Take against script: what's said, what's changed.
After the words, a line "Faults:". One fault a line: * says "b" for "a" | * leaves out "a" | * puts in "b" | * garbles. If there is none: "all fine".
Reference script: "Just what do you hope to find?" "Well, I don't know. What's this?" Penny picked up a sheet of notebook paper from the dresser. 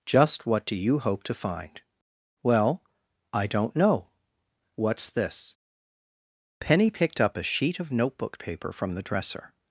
"Just what do you hope to find?" "Well, I don't know. What's this?" Penny picked up a sheet of notebook paper from the dresser.
Faults:
all fine